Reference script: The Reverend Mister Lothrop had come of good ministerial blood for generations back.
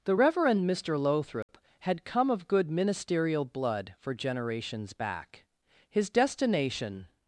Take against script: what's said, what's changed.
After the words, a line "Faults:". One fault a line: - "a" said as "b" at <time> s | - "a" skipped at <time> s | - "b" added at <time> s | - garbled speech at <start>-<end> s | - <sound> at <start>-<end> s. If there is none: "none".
The Reverend Mister Lothrop had come of good ministerial blood for generations back. His destination
Faults:
- dropout at 1.4-1.5 s
- "His destination" added at 5.9 s